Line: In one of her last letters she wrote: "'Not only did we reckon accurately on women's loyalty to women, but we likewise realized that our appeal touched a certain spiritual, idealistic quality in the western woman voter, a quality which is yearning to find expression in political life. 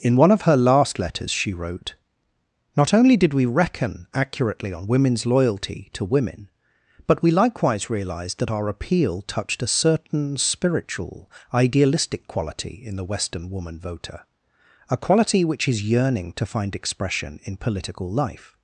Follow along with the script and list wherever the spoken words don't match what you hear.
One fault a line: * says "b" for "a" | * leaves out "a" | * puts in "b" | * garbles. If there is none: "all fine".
all fine